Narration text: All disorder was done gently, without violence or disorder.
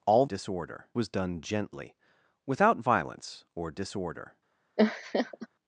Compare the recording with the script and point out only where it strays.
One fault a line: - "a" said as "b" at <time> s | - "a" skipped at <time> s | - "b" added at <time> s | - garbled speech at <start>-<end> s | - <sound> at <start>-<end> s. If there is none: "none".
- laugh at 4.8-5.5 s